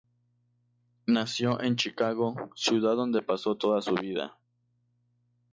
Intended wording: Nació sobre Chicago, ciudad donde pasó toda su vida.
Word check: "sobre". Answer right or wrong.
wrong